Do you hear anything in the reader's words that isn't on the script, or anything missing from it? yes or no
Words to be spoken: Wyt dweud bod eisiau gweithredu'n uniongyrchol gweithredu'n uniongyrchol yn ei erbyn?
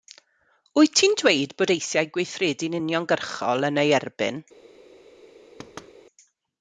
yes